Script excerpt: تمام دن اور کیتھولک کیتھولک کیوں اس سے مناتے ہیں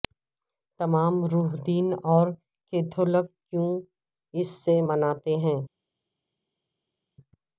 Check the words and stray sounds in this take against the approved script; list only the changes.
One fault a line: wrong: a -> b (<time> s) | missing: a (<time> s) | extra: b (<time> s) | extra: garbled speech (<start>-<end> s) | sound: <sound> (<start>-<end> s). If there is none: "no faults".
extra: روح (1.3 s)
missing: کیتھولک (3.3 s)